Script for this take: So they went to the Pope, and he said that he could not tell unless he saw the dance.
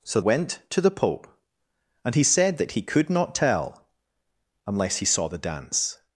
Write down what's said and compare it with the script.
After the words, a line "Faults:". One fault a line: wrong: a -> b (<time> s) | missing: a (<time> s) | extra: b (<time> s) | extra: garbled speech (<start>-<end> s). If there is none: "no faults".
So went to the Pope, and he said that he could not tell unless he saw the dance.
Faults:
missing: they (0.2 s)